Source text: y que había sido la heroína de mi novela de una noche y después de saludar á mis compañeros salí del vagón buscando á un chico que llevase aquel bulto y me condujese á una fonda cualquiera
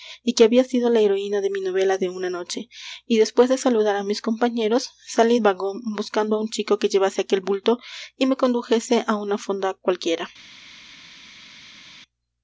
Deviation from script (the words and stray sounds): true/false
true